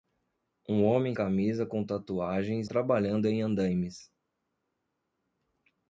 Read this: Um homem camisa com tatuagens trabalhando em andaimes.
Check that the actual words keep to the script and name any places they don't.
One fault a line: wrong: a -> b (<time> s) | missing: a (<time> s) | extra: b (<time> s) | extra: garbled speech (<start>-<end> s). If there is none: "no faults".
no faults